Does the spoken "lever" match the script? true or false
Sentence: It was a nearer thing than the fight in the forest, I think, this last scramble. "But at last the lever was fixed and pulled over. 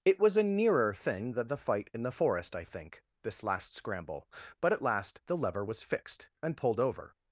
true